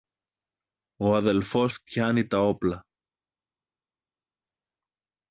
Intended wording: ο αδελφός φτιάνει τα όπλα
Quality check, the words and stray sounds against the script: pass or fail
pass